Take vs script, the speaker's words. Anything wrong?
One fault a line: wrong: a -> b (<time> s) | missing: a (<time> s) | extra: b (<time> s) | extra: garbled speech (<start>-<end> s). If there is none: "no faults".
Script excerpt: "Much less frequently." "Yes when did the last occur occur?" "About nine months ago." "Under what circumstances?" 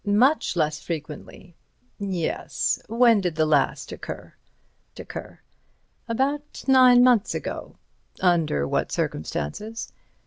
no faults